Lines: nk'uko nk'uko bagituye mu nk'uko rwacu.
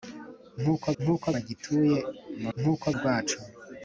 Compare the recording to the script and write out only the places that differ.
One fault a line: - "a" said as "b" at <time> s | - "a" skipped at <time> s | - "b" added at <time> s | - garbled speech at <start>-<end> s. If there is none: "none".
none